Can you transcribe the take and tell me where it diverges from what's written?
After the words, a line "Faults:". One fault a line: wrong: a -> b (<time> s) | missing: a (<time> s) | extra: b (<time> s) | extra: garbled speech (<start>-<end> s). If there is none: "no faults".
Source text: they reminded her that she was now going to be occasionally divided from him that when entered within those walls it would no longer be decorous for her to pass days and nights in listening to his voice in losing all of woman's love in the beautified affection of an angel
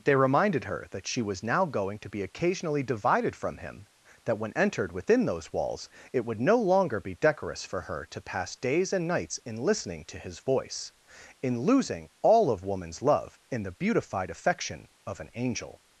they reminded her that she was now going to be occasionally divided from him that when entered within those walls it would no longer be decorous for her to pass days and nights in listening to his voice in losing all of woman's love in the beautified affection of an angel
Faults:
no faults